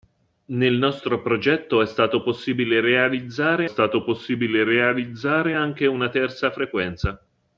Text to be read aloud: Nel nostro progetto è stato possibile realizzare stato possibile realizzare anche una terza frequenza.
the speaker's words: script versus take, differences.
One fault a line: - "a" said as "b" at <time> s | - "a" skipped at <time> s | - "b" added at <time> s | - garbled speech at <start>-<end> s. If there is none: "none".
none